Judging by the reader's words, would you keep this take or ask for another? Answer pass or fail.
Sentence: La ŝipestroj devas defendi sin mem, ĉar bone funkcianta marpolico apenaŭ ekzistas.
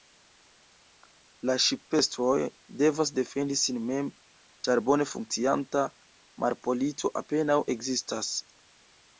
pass